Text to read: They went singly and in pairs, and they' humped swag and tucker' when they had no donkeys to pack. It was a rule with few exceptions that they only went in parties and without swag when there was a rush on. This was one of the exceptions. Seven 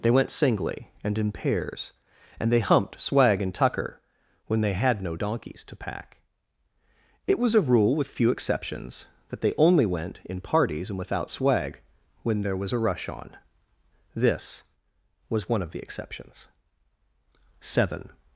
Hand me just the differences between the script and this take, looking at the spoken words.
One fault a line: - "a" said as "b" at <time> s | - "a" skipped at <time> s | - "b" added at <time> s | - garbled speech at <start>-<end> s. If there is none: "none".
none